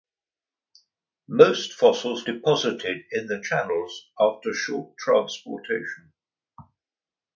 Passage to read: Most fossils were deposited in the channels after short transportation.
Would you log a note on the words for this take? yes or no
yes